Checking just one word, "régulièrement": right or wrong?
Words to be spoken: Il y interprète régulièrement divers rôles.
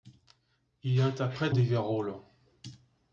wrong